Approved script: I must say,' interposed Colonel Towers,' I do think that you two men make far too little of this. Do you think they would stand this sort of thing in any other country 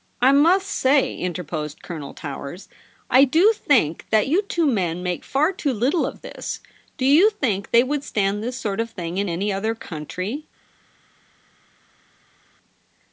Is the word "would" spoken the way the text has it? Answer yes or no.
yes